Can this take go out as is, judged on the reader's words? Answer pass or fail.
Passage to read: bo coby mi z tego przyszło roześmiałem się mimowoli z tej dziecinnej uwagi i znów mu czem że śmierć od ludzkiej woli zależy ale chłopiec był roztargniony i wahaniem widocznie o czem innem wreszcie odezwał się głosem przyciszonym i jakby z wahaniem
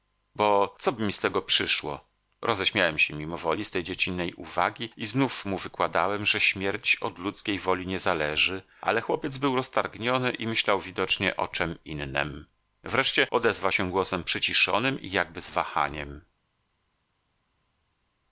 fail